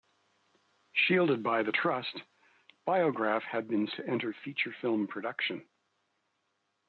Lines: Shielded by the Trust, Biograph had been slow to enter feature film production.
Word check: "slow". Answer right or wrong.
wrong